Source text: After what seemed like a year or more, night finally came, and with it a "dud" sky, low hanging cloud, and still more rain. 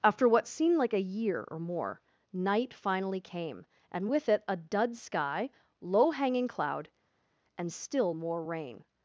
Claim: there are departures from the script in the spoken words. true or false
false